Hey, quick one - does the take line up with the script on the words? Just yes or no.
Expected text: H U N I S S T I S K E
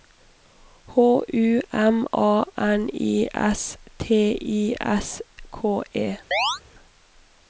no